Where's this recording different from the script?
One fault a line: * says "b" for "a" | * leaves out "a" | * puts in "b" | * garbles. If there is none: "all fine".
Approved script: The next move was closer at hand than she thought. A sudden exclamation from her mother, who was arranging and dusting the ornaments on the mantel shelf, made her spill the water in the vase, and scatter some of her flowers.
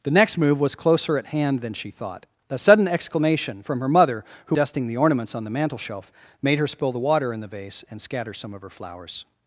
* leaves out "was arranging and"